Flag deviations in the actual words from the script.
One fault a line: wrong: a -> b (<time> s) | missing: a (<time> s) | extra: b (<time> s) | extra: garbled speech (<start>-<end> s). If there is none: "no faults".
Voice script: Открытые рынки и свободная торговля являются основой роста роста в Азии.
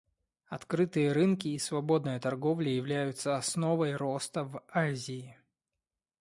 missing: роста (4.5 s)